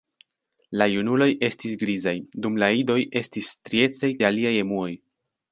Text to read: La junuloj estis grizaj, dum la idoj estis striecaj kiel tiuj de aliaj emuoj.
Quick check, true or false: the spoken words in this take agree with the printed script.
false